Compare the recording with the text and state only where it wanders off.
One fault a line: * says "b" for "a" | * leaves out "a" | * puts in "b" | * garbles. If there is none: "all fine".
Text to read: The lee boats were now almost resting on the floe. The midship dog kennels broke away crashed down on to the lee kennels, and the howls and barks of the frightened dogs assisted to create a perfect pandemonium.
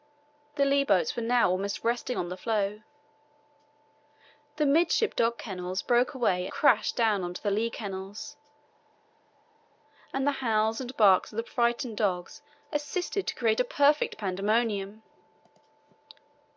all fine